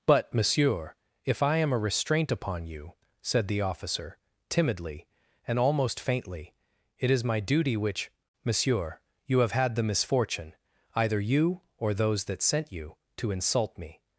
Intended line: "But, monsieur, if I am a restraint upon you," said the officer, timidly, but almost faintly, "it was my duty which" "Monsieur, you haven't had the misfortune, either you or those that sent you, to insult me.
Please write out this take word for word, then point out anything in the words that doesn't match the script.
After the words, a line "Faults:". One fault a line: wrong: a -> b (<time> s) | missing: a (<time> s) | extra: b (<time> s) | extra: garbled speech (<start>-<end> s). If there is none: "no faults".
"But, monsieur, if I am a restraint upon you," said the officer, timidly, and almost faintly, "it is my duty which" "Monsieur, you have had the misfortune, either you or those that sent you, to insult me.
Faults:
wrong: but -> and (5.5 s)
wrong: was -> is (7.1 s)
wrong: haven't -> have (9.4 s)